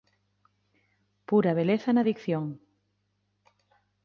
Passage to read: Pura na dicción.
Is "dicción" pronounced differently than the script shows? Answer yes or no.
no